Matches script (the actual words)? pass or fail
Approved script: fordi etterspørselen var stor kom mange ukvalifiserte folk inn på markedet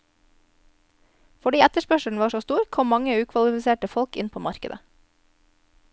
fail